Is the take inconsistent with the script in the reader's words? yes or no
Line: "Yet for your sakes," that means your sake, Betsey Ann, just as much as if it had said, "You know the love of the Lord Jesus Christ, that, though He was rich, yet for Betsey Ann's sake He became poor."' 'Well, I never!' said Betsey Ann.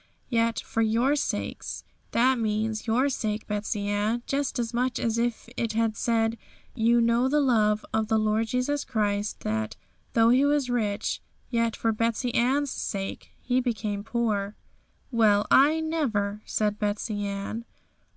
no